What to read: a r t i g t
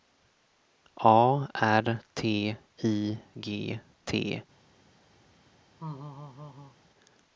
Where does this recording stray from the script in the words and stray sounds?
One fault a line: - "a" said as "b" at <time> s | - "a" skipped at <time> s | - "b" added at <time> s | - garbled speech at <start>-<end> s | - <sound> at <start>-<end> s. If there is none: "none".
- laugh at 5.8-6.8 s